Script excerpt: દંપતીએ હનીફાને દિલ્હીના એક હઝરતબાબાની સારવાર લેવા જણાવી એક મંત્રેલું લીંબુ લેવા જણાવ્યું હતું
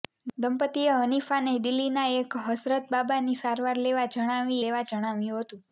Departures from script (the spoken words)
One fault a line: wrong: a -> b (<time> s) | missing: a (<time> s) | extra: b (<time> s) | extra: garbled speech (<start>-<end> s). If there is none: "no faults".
missing: એક મંત્રેલું લીંબુ (4.6 s)